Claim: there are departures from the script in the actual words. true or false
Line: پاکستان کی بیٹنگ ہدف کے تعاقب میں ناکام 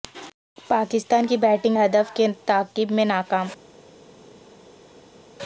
false